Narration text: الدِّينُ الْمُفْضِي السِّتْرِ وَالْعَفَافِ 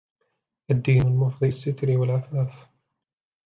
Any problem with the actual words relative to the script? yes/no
no